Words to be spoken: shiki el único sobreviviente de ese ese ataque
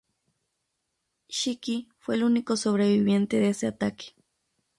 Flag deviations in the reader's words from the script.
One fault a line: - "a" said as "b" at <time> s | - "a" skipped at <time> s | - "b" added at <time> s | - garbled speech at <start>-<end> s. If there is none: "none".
- "fue" added at 2.0 s
- "ese" skipped at 3.7 s